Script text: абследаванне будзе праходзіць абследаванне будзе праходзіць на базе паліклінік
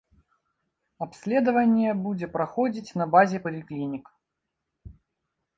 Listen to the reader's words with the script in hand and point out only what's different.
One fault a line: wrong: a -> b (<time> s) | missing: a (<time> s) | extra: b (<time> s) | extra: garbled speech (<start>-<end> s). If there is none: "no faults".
missing: абследаванне будзе праходзіць (3.0 s)